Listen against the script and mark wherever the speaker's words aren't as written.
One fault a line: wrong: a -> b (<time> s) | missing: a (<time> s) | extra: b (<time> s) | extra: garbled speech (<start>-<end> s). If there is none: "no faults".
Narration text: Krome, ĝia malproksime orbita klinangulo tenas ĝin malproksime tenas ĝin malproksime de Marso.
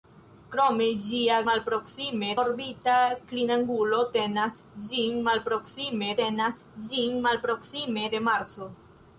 no faults